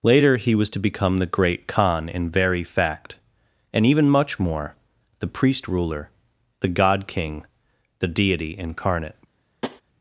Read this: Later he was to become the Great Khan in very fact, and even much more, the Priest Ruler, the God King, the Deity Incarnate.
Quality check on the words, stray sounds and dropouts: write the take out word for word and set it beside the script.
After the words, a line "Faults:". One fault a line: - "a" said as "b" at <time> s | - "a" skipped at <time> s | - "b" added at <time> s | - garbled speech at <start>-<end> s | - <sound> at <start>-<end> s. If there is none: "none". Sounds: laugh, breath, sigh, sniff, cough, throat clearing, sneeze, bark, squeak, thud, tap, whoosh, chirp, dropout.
Later he was to become the Great Khan in very fact, and even much more, the Priest Ruler, the God King, the Deity Incarnate.
Faults:
- tap at 9.6-9.8 s